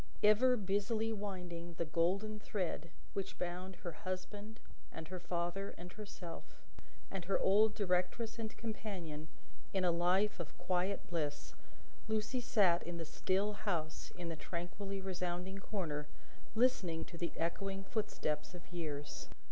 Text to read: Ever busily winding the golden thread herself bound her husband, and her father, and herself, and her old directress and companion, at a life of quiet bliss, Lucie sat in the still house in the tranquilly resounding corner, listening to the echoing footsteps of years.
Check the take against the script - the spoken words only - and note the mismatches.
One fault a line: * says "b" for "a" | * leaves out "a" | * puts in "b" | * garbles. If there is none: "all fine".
* says "which" for "herself"
* says "in" for "at"